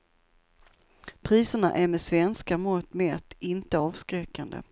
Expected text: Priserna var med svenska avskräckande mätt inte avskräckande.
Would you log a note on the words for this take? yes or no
yes